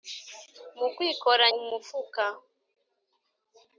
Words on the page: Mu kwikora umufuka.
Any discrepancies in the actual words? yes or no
no